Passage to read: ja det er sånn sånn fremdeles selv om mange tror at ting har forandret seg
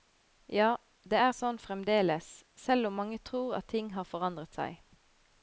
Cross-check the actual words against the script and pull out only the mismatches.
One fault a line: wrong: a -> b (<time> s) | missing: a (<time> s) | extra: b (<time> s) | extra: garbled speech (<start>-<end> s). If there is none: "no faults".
missing: sånn (1.6 s)